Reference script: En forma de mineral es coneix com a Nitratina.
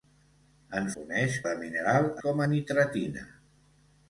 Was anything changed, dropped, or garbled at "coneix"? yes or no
yes